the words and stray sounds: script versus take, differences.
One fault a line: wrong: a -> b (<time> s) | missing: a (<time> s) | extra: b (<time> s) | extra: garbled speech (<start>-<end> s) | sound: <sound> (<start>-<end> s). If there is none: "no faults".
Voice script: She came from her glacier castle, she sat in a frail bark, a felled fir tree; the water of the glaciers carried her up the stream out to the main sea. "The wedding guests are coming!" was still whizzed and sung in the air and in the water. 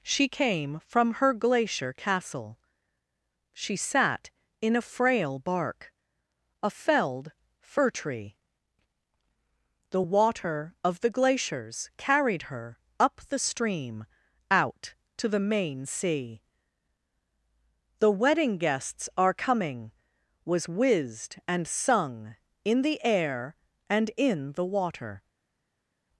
missing: still (20.7 s)